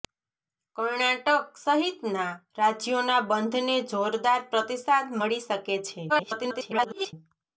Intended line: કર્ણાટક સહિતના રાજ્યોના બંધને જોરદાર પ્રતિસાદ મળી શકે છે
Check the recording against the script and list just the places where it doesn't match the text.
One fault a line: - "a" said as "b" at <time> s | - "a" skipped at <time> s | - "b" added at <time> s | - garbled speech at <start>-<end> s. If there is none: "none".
- garbled speech at 6.1-7.1 s